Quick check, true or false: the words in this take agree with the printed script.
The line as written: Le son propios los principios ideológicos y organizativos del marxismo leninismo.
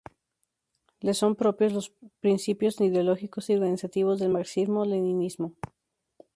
true